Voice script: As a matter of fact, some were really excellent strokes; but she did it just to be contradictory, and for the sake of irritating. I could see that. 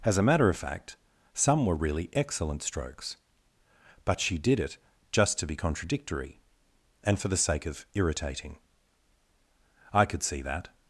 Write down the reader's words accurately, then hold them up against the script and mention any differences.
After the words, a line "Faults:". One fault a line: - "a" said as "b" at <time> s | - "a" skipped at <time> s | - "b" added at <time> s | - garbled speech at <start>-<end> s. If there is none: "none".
As a matter of fact, some were really excellent strokes; but she did it just to be contradictory, and for the sake of irritating. I could see that.
Faults:
none